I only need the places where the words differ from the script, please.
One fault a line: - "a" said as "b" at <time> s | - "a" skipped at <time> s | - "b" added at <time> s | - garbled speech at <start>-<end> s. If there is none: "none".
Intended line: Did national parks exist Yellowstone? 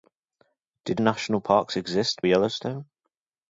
none